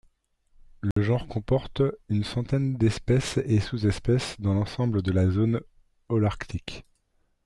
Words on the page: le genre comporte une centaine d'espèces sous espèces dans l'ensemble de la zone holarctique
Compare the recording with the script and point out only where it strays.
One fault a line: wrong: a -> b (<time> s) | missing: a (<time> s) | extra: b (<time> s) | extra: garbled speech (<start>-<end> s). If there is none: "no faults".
extra: et (3.4 s)